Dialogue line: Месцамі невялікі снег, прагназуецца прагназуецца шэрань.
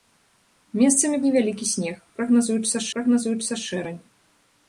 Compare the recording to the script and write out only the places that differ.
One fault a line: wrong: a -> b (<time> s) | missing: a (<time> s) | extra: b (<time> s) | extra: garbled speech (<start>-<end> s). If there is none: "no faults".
no faults